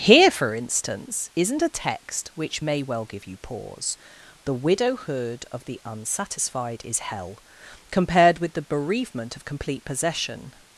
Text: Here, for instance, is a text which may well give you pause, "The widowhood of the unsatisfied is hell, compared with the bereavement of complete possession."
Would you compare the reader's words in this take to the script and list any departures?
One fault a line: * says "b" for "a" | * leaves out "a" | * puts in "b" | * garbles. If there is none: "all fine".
* says "isn't" for "is"